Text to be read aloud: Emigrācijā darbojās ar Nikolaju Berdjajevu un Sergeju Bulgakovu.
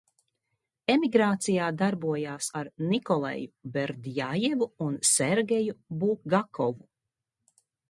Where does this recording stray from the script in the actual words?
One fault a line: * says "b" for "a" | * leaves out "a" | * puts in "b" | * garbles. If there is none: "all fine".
all fine